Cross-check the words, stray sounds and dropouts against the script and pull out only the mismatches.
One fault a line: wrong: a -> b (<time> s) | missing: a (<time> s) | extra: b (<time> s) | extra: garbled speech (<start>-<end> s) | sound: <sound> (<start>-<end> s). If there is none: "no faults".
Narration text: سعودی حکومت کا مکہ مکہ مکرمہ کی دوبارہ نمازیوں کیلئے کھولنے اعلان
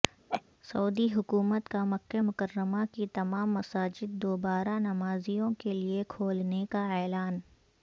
sound: laugh (0.3-0.4 s)
missing: مکہ (2.2 s)
extra: تمام مساجد (3.1 s)
extra: کا (6.7 s)